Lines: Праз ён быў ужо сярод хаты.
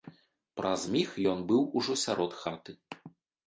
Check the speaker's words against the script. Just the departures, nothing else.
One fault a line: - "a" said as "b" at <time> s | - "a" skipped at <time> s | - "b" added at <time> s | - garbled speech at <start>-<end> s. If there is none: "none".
- "міг" added at 0.9 s